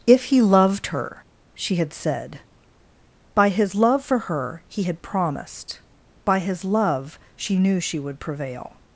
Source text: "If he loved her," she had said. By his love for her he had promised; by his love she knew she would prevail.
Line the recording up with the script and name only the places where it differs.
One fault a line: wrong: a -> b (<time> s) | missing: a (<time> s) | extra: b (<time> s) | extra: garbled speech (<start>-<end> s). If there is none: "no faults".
no faults